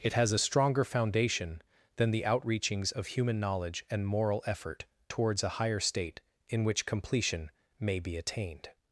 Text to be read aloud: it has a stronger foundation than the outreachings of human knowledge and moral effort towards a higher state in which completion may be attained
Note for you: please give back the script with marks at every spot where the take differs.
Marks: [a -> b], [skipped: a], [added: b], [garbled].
it has a stronger foundation than the outreachings of human knowledge and moral effort towards a higher state in which completion may be attained